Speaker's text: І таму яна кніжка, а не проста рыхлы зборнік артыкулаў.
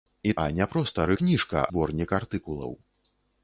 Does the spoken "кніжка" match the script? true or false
false